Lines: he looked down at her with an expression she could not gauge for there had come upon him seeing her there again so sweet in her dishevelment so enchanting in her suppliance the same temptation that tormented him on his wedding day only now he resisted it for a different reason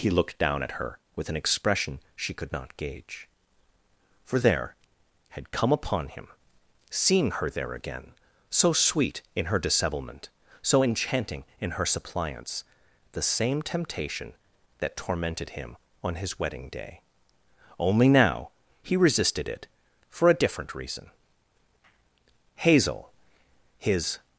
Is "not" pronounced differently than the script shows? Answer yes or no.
no